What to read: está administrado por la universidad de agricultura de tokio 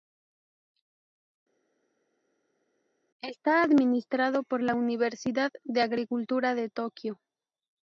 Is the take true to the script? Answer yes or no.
yes